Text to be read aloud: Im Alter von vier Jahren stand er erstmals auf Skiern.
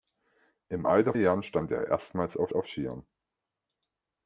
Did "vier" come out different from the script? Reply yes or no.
yes